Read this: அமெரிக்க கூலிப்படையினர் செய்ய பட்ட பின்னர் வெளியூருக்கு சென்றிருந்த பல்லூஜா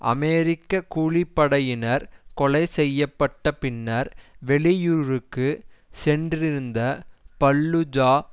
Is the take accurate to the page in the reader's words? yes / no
no